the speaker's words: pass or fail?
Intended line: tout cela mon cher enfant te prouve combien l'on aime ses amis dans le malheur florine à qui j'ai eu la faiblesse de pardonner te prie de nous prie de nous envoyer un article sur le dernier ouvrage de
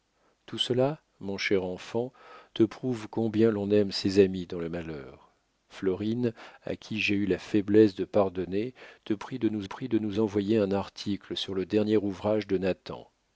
pass